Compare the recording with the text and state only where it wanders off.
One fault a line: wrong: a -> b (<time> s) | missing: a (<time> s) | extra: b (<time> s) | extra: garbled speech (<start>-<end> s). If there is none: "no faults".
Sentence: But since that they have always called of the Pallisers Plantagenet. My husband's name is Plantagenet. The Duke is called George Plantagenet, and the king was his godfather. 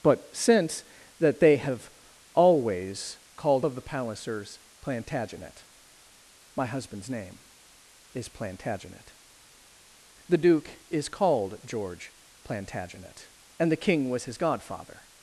no faults